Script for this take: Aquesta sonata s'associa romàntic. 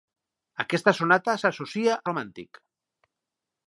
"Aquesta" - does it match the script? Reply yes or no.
yes